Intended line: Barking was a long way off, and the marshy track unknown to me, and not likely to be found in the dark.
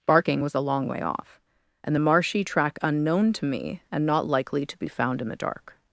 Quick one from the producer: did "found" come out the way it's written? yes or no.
yes